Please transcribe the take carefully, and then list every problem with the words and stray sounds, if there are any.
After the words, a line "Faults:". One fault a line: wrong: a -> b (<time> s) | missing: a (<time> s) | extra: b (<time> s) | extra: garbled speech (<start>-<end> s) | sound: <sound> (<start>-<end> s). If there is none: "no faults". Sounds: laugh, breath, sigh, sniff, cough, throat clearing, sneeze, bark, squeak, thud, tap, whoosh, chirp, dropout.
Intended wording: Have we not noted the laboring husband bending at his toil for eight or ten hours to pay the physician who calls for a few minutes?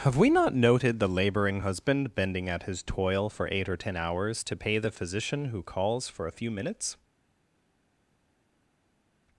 Have we not noted the laboring husband bending at his toil for eight or ten hours to pay the physician who calls for a few minutes?
Faults:
no faults